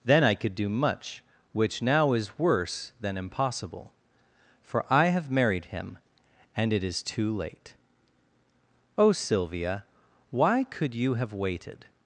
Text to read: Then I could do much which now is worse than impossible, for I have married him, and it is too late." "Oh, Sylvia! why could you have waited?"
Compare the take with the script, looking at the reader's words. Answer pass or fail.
pass